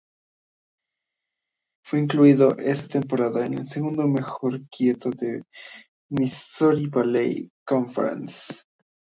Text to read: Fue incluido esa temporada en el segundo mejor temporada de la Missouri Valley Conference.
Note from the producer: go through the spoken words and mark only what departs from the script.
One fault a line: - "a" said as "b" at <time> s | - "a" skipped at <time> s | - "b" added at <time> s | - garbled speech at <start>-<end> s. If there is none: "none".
- "temporada" said as "quinteto" at 4.7 s